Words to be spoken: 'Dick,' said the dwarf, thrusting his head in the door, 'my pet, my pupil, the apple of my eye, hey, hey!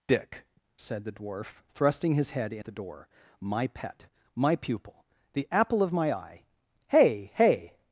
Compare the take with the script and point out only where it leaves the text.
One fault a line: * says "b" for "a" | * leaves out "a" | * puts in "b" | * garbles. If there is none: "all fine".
all fine